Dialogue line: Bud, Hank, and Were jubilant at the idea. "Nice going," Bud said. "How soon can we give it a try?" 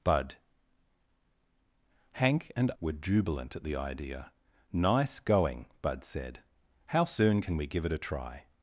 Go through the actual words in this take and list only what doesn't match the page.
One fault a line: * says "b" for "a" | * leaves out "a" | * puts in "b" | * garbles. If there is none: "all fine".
all fine